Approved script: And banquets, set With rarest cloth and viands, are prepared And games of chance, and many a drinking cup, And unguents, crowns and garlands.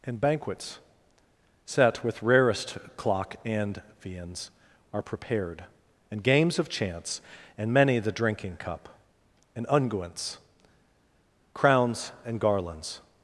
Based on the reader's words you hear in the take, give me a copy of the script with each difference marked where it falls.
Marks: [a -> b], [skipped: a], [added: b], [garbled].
And banquets, set With rarest [cloth -> clock] and viands, are prepared And games of chance, and many [a -> the] drinking cup, And unguents, crowns and garlands.